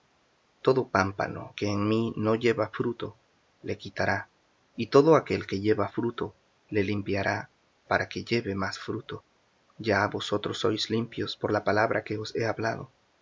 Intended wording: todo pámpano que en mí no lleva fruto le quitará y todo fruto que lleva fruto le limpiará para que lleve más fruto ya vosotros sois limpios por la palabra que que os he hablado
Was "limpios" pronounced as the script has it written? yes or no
yes